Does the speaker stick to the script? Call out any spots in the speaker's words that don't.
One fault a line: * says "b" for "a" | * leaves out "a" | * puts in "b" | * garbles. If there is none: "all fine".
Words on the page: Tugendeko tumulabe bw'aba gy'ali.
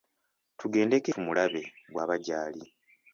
all fine